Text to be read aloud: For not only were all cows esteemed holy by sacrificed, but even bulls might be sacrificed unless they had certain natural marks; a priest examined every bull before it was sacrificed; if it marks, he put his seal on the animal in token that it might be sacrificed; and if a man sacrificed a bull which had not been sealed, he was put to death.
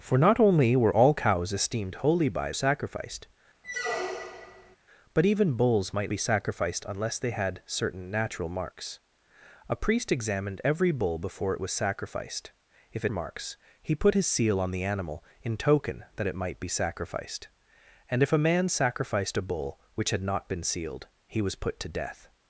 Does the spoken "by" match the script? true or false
true